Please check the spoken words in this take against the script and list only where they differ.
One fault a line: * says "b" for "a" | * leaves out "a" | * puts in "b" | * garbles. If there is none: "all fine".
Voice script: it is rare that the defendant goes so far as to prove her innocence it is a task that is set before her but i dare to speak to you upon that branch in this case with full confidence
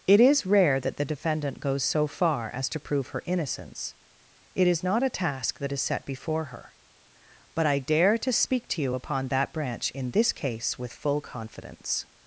* puts in "not"